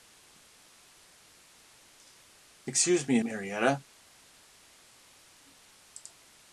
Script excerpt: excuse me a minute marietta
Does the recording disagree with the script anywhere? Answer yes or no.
yes